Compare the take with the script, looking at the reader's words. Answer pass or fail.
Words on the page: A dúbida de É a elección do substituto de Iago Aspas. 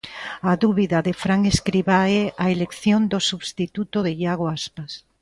fail